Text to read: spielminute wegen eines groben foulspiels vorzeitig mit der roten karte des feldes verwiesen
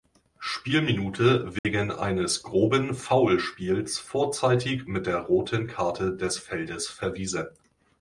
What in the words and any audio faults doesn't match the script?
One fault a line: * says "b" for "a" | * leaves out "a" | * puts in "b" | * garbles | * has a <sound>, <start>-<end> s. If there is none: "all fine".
* has a dropout, 1.6-1.6 s